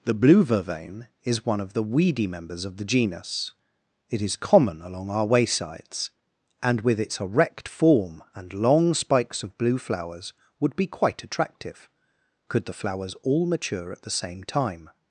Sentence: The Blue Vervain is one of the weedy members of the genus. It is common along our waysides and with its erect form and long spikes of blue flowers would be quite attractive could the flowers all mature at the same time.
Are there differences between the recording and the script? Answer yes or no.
no